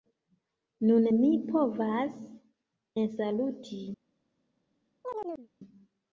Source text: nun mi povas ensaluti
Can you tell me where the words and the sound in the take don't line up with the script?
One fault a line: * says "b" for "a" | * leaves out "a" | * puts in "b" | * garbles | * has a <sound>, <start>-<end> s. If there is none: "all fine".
* has a chirp, 5.0-5.5 s